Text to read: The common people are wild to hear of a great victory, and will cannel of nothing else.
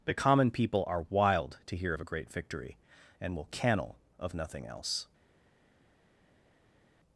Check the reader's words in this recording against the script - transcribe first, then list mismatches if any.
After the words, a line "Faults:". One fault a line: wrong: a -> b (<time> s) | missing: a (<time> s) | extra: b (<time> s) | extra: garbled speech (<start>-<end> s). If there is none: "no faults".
The common people are wild to hear of a great victory, and will cannel of nothing else.
Faults:
no faults